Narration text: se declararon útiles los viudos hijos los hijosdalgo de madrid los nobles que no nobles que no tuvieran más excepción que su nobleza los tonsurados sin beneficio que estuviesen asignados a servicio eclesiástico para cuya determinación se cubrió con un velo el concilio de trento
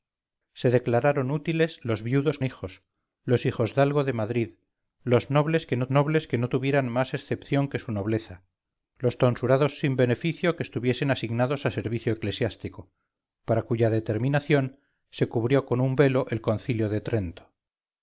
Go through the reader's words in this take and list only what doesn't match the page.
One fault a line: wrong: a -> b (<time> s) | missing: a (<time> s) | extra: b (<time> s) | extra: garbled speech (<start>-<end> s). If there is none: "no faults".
no faults